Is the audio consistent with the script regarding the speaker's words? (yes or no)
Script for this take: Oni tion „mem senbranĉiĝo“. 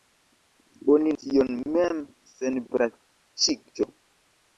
yes